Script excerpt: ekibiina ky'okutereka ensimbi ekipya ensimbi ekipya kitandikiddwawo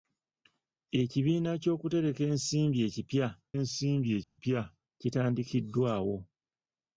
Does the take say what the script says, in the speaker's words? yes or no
yes